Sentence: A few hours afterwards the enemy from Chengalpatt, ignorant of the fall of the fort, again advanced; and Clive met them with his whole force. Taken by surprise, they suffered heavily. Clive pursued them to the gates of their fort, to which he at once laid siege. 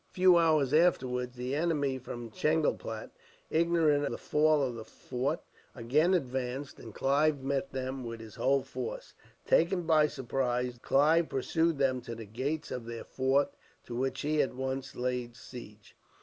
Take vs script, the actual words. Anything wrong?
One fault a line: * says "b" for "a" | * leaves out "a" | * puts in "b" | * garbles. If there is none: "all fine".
* leaves out "of"
* leaves out "they suffered heavily"